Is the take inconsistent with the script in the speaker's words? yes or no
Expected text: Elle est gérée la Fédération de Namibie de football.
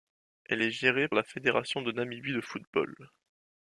no